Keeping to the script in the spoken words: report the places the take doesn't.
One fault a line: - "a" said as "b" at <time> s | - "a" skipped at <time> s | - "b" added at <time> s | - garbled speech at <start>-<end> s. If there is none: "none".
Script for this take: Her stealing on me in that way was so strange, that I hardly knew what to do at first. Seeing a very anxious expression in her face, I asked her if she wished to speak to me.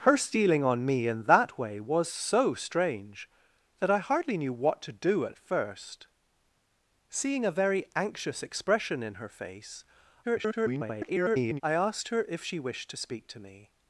- garbled speech at 10.2-11.6 s